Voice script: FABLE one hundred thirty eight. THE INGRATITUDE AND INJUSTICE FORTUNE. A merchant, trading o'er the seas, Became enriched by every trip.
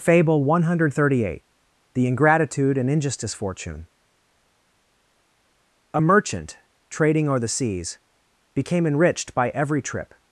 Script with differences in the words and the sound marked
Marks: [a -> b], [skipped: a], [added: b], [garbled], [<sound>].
FABLE one hundred thirty eight. THE INGRATITUDE AND INJUSTICE FORTUNE. A merchant, trading o'er the seas, Became enriched by every trip.